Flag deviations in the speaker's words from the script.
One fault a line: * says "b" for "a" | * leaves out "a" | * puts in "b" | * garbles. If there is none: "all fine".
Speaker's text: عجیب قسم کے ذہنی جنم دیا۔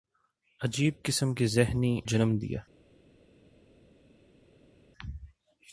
all fine